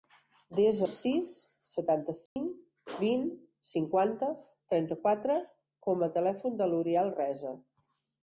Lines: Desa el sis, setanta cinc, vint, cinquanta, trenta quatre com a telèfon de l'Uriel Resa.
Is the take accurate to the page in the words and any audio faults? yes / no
no